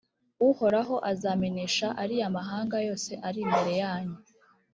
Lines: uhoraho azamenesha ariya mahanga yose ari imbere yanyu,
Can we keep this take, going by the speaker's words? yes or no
yes